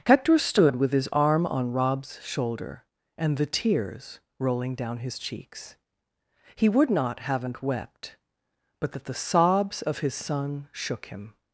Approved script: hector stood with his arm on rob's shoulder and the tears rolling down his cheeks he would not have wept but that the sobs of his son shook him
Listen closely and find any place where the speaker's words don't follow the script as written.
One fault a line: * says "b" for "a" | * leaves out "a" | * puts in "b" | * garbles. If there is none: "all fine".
* says "haven't" for "have"